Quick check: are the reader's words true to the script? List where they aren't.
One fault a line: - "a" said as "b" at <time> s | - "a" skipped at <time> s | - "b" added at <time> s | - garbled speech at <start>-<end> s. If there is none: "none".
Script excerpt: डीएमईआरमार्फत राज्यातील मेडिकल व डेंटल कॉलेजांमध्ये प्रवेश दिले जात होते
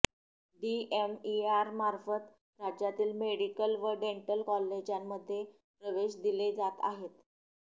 - "होते" said as "आहेत" at 6.8 s